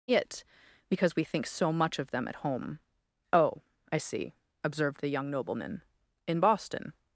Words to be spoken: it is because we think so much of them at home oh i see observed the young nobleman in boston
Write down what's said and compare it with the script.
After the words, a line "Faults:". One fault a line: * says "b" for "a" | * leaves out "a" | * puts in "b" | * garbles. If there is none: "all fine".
it because we think so much of them at home oh i see observed the young nobleman in boston
Faults:
* leaves out "is"